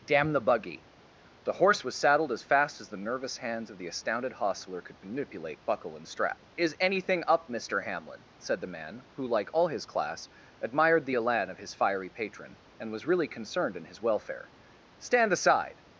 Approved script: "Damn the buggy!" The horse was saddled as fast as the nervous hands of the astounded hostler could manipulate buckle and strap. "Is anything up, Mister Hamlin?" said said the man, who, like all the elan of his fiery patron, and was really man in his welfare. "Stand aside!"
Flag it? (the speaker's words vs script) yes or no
yes